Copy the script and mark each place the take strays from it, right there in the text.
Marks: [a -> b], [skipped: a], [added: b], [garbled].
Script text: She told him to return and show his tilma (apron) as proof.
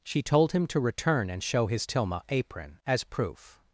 She told him to return and show his tilma (apron) as proof.